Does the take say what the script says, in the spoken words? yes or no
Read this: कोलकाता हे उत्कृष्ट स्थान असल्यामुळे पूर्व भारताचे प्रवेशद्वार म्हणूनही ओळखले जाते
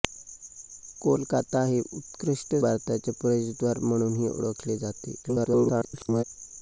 no